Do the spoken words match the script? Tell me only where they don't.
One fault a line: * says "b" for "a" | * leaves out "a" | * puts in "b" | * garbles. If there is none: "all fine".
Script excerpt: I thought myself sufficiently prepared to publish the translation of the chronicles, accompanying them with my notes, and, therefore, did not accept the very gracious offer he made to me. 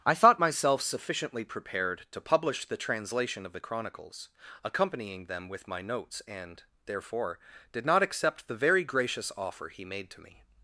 all fine